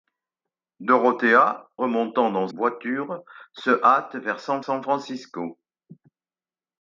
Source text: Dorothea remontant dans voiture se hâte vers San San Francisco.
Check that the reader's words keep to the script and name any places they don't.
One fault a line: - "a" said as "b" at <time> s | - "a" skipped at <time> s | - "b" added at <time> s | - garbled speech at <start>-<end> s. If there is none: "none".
none